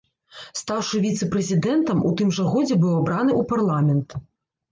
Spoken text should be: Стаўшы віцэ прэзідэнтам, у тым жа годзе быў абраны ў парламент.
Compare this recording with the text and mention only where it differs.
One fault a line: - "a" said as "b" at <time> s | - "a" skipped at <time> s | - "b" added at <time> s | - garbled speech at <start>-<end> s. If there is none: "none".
none